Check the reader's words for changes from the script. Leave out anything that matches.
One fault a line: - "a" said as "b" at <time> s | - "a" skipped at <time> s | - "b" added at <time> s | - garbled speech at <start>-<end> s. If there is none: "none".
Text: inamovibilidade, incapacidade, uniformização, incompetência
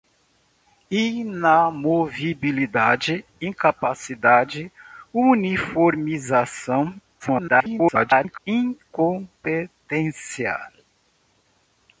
- garbled speech at 7.2-8.4 s